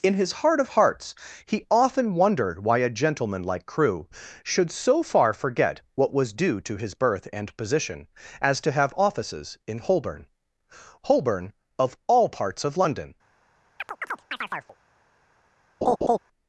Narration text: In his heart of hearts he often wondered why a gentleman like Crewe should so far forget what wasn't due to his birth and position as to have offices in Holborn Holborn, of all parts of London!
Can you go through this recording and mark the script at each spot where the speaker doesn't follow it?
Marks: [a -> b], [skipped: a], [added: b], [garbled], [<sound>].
In his heart of hearts he often wondered why a gentleman like Crewe should so far forget what [wasn't -> was] due to his birth and position as to have offices in Holborn Holborn, of all parts of London! [chirp] [laugh]